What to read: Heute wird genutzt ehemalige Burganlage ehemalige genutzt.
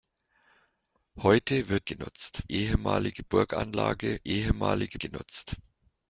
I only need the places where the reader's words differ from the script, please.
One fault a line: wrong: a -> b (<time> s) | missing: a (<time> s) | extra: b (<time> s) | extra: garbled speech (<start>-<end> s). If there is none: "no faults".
no faults